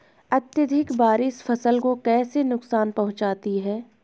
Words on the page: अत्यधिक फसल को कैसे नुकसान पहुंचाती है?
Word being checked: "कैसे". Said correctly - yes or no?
yes